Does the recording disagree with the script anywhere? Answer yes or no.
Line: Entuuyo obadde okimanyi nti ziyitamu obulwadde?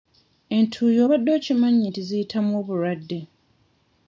no